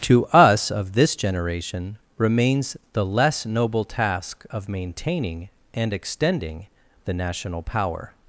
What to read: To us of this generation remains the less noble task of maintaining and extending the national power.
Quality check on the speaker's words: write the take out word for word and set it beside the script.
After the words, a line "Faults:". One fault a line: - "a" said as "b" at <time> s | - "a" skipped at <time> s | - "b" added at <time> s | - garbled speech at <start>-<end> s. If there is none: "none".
To us of this generation remains the less noble task of maintaining and extending the national power.
Faults:
none